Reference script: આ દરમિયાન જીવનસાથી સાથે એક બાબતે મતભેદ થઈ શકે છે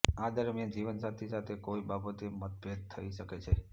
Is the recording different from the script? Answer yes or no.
yes